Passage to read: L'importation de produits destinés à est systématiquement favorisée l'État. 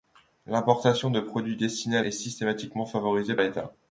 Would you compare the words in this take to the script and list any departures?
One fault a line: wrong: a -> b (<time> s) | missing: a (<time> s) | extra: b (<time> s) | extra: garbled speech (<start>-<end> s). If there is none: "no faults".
no faults